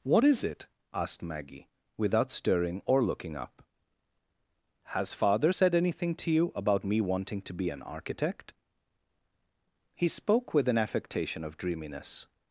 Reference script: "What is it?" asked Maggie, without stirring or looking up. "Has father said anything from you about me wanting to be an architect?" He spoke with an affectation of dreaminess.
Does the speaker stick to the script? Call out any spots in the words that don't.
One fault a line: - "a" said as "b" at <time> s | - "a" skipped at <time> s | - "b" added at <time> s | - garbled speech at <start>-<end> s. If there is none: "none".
- "from" said as "to" at 6.2 s